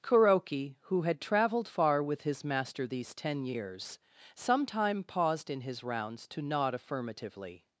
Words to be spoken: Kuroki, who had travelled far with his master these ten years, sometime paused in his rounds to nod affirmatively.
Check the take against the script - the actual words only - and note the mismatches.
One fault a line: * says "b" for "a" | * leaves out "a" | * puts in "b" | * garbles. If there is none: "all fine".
all fine